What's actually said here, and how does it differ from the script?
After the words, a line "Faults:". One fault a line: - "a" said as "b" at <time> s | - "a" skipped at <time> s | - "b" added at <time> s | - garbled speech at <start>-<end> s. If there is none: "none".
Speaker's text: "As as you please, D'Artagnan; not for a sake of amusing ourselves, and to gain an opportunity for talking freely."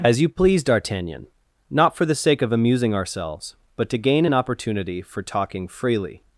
"As you please, D'Artagnan; not for the sake of amusing ourselves, but to gain an opportunity for talking freely."
Faults:
- "as" skipped at 0.2 s
- "a" said as "the" at 2.0 s
- "and" said as "but" at 3.8 s